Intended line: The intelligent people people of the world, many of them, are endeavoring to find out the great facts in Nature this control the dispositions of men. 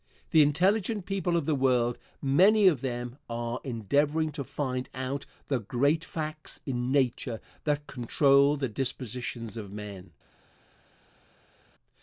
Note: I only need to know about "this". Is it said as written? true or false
false